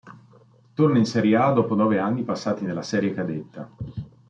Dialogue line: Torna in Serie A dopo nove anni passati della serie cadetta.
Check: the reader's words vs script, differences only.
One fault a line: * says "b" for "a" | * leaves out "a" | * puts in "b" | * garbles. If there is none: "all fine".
* says "nella" for "della"